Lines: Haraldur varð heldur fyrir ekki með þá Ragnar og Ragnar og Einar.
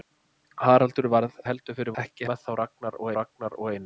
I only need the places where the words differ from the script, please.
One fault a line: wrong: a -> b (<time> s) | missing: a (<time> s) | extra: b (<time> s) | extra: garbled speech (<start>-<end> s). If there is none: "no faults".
no faults